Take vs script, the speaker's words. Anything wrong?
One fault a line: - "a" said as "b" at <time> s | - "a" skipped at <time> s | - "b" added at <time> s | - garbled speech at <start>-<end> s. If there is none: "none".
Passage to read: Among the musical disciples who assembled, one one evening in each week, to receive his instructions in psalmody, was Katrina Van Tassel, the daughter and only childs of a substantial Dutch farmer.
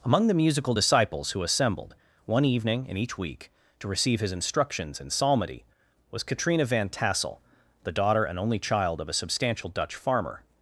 - "one" skipped at 2.4 s
- "childs" said as "child" at 8.6 s